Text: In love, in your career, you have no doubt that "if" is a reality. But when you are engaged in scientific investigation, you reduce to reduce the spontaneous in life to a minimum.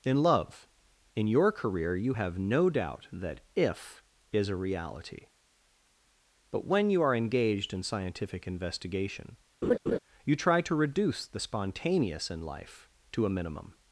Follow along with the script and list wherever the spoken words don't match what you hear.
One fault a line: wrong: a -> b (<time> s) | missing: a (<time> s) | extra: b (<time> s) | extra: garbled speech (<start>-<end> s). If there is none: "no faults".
wrong: reduce -> try (10.4 s)